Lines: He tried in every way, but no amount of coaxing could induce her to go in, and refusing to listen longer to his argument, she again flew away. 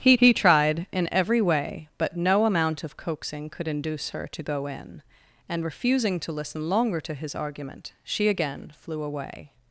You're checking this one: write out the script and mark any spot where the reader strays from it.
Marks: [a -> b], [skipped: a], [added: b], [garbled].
He [added: he] tried in every way, but no amount of coaxing could induce her to go in, and refusing to listen longer to his argument, she again flew away.